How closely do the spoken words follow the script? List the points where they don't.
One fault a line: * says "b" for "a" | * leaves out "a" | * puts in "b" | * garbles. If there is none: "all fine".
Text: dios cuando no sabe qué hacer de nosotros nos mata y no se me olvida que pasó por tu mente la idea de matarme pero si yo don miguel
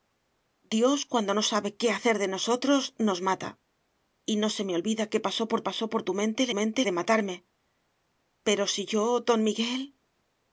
* puts in "pasó por"
* says "mente" for "idea"